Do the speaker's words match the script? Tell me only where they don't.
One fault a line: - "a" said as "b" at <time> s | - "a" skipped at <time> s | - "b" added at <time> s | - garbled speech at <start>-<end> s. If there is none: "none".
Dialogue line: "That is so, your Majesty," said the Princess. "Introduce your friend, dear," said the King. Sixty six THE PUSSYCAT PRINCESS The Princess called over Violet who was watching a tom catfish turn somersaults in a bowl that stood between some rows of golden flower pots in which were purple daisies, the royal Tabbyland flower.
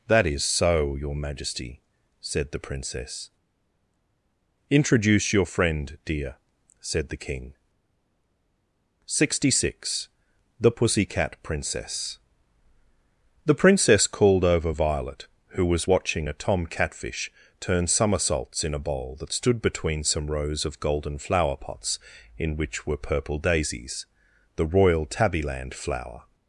none